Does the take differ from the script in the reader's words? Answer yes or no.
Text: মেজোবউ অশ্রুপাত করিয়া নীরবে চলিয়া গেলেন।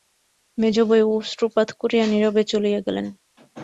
no